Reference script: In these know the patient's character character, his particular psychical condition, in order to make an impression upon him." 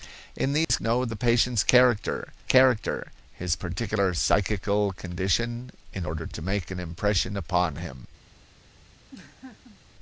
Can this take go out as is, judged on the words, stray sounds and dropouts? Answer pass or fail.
fail